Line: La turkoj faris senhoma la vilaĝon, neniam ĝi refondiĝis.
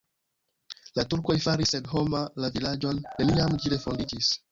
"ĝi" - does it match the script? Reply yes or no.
yes